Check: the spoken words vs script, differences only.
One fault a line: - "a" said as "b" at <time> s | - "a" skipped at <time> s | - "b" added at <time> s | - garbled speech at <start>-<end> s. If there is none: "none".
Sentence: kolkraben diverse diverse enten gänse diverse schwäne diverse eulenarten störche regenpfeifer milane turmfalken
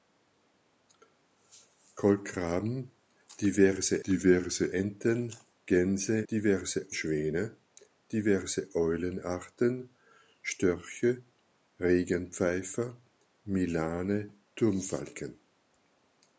none